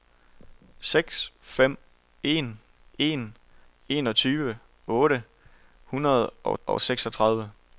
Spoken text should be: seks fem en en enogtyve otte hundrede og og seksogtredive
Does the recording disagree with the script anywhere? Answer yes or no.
no